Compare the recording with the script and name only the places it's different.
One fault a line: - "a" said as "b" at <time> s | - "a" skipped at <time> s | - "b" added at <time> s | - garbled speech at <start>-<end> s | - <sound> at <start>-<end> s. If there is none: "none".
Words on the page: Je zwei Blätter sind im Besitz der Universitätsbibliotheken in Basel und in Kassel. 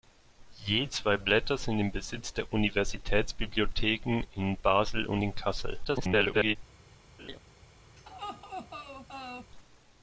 - garbled speech at 5.8-6.6 s
- laugh at 7.2-7.4 s
- laugh at 8.0-9.5 s